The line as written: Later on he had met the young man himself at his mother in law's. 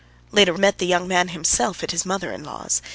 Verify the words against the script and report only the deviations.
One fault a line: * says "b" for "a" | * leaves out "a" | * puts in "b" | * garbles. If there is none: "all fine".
* leaves out "on he had"